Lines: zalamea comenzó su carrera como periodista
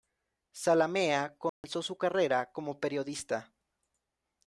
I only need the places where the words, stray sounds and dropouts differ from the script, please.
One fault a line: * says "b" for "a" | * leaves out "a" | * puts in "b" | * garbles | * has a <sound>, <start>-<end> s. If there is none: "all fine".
* has a dropout, 1.5-1.6 s